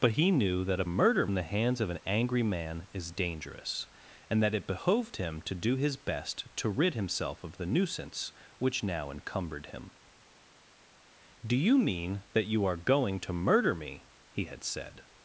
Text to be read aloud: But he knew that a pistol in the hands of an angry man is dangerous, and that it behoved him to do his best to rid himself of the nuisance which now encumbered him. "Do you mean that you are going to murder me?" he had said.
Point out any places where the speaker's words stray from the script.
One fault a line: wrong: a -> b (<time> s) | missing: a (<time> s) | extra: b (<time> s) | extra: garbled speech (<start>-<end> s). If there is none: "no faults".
wrong: pistol -> murder (0.8 s)